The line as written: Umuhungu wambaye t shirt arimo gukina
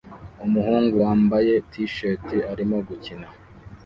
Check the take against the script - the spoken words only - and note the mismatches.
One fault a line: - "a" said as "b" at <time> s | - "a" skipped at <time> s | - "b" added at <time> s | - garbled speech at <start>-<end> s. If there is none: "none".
none